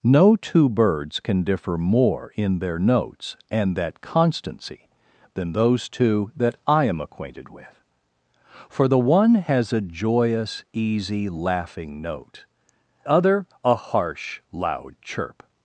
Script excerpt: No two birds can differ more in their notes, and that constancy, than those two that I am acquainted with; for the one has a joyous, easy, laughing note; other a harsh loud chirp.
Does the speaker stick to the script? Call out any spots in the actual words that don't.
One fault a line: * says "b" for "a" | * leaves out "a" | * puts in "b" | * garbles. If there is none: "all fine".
all fine